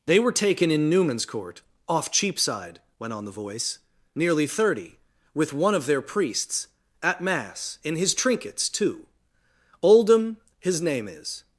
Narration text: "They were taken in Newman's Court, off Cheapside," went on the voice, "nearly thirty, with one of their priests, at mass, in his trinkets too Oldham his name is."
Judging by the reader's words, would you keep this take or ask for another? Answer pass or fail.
pass